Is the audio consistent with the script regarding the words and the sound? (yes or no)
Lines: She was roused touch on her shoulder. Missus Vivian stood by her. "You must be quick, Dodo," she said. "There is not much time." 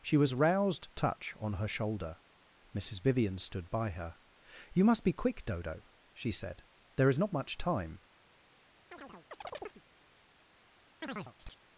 no